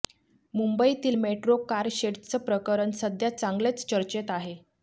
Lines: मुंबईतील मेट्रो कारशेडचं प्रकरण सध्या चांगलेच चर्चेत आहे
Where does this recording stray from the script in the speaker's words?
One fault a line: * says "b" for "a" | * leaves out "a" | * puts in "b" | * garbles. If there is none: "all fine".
all fine